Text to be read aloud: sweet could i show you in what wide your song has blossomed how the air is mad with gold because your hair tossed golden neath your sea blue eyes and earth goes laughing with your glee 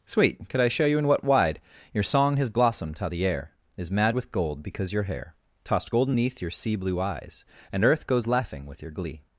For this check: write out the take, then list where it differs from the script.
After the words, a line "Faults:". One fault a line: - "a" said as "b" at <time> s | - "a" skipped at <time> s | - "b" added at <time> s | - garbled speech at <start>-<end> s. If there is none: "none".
sweet could i show you in what wide your song has blossomed how the air is mad with gold because your hair tossed golden neath your sea blue eyes and earth goes laughing with your glee
Faults:
none